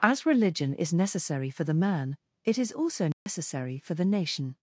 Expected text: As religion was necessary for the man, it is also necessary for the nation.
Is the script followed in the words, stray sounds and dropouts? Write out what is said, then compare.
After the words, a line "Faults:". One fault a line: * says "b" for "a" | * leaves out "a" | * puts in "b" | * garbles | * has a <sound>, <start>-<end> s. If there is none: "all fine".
As religion is necessary for the man, it is also necessary for the nation.
Faults:
* says "is" for "was"
* has a dropout, 3.1-3.3 s